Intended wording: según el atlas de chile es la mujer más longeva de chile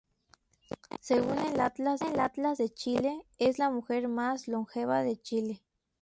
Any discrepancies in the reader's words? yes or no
yes